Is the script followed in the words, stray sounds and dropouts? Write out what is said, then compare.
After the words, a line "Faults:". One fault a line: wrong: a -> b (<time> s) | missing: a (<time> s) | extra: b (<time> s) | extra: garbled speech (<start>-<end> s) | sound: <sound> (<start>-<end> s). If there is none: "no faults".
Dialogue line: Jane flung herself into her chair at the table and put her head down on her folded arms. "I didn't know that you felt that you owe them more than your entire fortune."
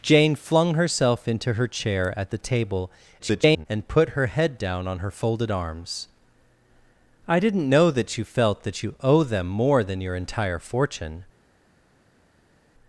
Jane flung herself into her chair at the table [garbled] and put her head down on her folded arms. "I didn't know that you felt that you owe them more than your entire fortune."
Faults:
extra: garbled speech (3.2-3.7 s)